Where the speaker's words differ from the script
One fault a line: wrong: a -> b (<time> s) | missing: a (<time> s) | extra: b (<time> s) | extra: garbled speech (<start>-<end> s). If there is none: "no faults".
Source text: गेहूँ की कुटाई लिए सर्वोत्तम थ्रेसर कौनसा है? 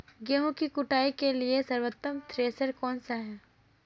extra: के (1.1 s)